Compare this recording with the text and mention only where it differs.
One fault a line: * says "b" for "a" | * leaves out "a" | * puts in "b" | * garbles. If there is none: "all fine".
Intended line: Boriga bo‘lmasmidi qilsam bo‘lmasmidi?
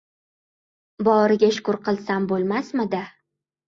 * says "shukur" for "bo‘lmasmidi"